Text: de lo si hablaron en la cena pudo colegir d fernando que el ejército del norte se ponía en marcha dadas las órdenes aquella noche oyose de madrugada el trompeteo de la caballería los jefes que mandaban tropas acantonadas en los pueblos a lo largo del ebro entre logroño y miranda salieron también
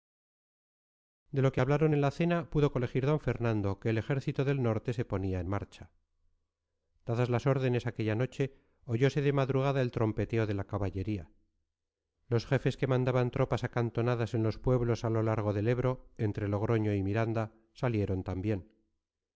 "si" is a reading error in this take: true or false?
true